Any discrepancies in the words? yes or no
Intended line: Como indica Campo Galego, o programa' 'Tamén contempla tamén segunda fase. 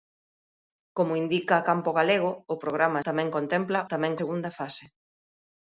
no